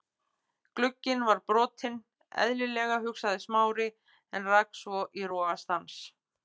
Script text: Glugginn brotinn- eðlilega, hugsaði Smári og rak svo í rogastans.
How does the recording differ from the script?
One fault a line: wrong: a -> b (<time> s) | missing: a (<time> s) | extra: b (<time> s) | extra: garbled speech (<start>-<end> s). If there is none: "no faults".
extra: var (1.3 s)
wrong: og -> en (4.4 s)